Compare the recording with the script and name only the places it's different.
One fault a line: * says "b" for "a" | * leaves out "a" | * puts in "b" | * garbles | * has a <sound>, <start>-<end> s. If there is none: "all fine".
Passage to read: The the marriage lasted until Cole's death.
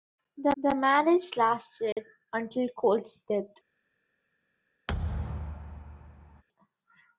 * has a dropout, 1.9-2.0 s
* has a thud, 4.9-6.4 s